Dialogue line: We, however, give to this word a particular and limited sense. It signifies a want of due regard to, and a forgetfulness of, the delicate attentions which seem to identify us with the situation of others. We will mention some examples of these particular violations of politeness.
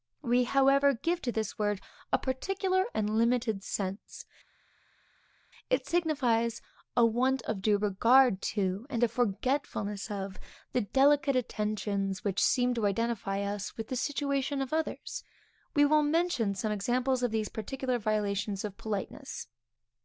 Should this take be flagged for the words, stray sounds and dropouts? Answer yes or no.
no